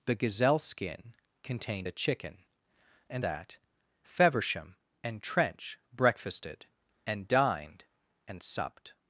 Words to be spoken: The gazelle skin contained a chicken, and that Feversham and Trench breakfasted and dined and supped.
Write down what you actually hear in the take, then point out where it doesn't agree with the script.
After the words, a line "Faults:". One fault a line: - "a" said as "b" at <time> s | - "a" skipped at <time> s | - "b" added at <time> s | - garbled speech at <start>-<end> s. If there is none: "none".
The gazelle skin contained a chicken, and that Feversham and Trench breakfasted and dined and supped.
Faults:
none